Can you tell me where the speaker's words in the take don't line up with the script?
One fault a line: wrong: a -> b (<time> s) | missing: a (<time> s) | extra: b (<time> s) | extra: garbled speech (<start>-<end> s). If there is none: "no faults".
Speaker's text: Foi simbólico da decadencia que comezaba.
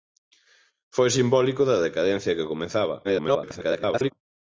extra: garbled speech (3.0-4.1 s)